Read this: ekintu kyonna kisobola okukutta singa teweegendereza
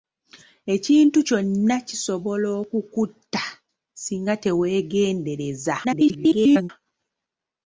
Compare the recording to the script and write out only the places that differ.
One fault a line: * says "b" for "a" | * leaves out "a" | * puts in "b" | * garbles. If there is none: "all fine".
* garbles